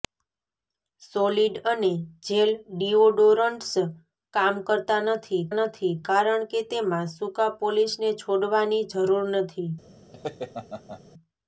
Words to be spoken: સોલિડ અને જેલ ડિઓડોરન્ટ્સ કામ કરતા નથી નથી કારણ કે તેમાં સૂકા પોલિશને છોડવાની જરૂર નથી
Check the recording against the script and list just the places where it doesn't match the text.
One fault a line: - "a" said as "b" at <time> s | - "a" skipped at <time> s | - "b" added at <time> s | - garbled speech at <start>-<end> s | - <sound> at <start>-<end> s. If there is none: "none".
- laugh at 10.1-11.0 s